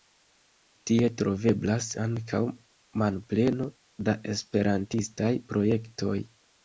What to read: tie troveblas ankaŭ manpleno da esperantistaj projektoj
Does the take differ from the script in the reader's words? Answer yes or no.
no